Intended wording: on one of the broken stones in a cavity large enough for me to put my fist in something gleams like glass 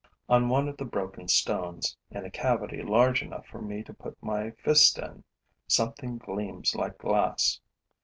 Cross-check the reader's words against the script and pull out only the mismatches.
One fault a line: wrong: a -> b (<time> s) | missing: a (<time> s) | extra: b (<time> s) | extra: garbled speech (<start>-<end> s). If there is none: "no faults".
no faults